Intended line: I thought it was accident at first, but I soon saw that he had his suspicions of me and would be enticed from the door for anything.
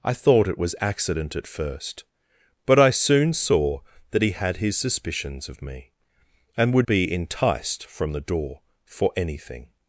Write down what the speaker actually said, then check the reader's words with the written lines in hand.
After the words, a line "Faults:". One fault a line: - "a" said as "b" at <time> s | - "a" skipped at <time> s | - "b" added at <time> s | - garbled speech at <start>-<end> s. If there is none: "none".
I thought it was accident at first, but I soon saw that he had his suspicions of me and would be enticed from the door for anything.
Faults:
none